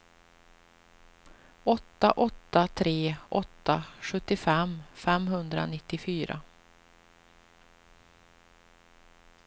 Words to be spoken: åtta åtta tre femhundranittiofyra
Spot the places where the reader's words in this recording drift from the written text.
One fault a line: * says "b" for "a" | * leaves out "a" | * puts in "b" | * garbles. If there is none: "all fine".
* puts in "åtta sjuttiofem"